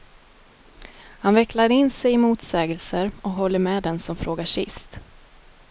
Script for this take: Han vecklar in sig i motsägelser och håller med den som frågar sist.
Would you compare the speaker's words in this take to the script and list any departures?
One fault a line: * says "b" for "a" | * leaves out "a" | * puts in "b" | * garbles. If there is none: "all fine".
all fine